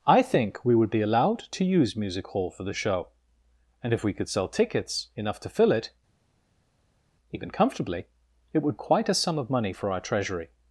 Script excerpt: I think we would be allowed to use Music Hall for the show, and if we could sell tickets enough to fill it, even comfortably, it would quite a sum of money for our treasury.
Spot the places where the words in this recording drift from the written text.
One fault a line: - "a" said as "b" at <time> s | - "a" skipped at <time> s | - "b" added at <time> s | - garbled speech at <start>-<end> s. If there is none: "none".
none